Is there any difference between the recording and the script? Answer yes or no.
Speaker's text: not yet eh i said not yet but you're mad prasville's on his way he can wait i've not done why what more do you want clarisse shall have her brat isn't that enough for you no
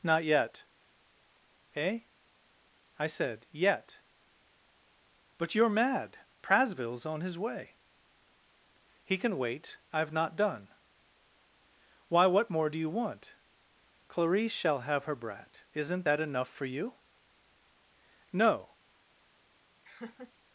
yes